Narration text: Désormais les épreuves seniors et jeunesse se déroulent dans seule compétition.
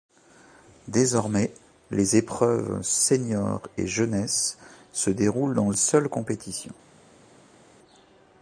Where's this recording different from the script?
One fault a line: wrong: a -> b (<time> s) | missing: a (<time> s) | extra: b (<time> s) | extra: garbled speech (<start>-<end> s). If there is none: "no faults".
no faults